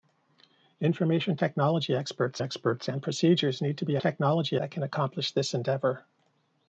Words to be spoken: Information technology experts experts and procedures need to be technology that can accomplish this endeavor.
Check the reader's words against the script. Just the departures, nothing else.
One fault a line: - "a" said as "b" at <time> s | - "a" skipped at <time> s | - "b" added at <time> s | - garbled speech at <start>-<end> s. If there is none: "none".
none